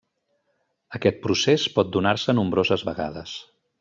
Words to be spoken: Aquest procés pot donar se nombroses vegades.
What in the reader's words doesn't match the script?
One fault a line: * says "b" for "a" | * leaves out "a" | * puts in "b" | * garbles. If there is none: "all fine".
all fine